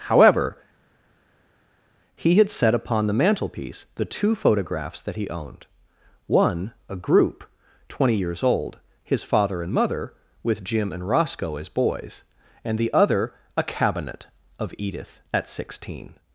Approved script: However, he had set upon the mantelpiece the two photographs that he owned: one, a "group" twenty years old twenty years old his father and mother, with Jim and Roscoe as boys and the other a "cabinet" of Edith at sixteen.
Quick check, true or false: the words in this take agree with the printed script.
false